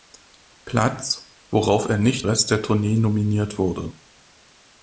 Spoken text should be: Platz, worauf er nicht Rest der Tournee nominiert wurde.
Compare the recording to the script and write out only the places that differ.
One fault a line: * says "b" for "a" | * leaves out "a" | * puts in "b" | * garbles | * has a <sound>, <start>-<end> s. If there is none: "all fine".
all fine